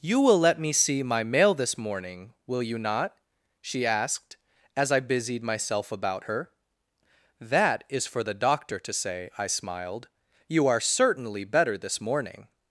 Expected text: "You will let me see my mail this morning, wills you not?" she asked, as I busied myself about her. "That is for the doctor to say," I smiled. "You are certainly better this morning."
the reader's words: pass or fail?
fail